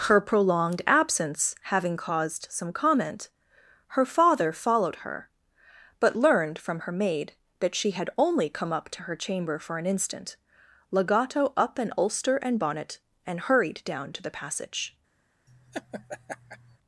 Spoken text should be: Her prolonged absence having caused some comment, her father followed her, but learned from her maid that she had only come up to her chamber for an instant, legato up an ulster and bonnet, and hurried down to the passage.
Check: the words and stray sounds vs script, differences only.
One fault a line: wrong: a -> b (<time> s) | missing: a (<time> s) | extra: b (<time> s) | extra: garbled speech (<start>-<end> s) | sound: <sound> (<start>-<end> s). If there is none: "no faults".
sound: laugh (15.5-16.8 s)